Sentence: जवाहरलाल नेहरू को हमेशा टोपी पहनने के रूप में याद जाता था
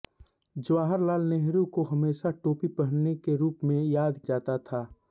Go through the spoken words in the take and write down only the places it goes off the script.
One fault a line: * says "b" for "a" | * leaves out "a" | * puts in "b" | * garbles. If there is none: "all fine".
all fine